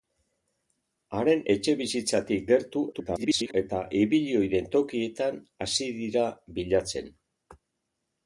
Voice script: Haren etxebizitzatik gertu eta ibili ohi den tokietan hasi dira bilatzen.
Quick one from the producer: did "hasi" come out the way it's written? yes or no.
yes